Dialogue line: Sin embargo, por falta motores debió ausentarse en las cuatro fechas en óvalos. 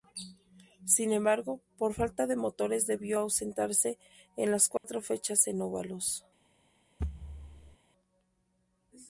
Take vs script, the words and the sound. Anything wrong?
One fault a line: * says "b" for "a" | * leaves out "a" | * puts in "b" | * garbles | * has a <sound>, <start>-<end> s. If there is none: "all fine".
* puts in "de"
* has a dropout, 4.8-4.8 s
* has a thud, 7.0-7.8 s